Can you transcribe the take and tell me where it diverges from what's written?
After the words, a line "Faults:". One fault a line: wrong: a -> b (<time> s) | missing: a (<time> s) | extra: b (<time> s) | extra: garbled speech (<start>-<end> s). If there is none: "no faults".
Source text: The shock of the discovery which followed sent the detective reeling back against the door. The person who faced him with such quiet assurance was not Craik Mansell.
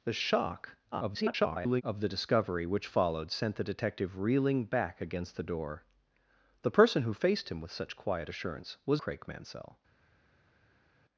The shock [garbled] of the discovery which followed sent the detective reeling back against the door. The person who faced him with such quiet assurance was Craik Mansell.
Faults:
extra: garbled speech (0.9-1.8 s)
missing: not (9.0 s)